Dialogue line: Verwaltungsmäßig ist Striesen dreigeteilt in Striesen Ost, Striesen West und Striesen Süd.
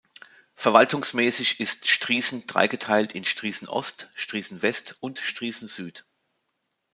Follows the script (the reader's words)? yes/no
yes